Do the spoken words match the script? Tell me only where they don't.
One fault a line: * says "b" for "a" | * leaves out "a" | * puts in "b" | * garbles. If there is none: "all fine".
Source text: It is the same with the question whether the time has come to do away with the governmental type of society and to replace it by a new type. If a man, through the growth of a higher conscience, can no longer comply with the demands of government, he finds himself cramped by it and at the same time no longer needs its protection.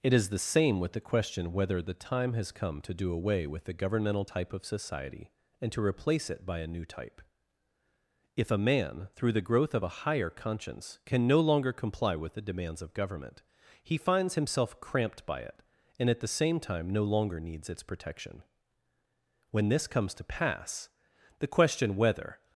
* puts in "When this comes to pass the question whether"